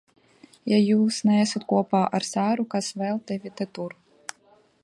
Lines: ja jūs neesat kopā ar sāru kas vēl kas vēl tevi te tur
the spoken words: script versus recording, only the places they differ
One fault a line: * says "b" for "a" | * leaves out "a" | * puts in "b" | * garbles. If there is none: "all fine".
* leaves out "kas vēl"